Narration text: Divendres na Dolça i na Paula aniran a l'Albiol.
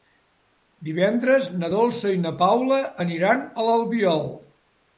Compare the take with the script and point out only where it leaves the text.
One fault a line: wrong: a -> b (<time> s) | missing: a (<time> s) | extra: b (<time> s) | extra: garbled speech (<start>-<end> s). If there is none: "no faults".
no faults